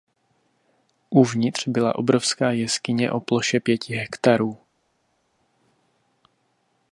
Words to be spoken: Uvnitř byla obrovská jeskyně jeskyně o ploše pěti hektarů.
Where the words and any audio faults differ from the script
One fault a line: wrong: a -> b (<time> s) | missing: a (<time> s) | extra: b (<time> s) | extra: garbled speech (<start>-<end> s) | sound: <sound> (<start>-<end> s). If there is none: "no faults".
missing: jeskyně (3.1 s)